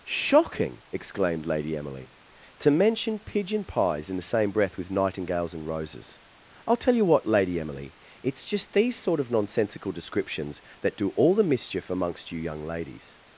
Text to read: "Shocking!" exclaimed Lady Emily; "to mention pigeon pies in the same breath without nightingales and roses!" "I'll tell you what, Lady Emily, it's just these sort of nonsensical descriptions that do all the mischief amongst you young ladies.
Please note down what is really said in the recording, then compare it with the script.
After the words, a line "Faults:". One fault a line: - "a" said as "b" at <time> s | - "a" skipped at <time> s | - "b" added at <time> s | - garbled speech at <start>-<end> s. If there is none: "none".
"Shocking!" exclaimed Lady Emily; "to mention pigeon pies in the same breath with nightingales and roses!" "I'll tell you what, Lady Emily, it's just these sort of nonsensical descriptions that do all the mischief amongst you young ladies.
Faults:
- "without" said as "with" at 4.8 s